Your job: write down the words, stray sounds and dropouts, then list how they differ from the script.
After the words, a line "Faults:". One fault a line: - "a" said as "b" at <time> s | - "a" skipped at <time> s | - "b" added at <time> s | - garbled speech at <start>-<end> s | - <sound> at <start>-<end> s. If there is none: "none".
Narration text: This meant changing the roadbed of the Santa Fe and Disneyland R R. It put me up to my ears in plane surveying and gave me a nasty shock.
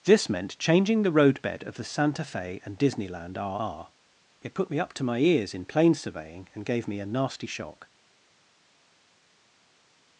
This meant changing the roadbed of the Santa Fe and Disneyland R R. It put me up to my ears in plane surveying and gave me a nasty shock.
Faults:
none